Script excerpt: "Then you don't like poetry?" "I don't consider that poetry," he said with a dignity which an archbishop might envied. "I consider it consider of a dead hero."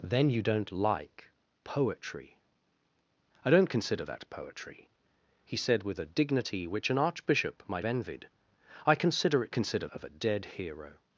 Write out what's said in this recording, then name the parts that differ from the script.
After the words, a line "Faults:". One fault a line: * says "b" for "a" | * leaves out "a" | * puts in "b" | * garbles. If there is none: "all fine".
"Then you don't like poetry?" "I don't consider that poetry," he said with a dignity which an archbishop might envied. "I consider it consider of a dead hero."
Faults:
all fine